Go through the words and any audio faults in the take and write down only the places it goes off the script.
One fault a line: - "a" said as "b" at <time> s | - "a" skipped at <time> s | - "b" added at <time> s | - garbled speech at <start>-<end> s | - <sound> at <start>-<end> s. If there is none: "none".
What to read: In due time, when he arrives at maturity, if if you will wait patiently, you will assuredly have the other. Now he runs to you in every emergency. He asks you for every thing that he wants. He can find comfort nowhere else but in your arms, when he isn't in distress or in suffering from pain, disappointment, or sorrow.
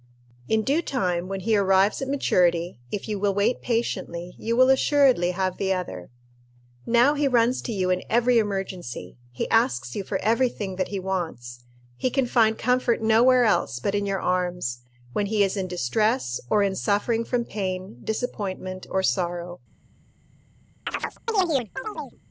- "if" skipped at 3.1 s
- "isn't" said as "is" at 15.4 s
- chirp at 20.9-22.2 s